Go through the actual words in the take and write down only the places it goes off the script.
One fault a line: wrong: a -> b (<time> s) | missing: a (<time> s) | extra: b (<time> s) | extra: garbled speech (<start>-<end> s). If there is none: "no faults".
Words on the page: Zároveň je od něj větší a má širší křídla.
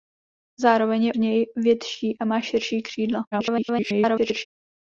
missing: od (1.1 s)
extra: garbled speech (3.3-4.5 s)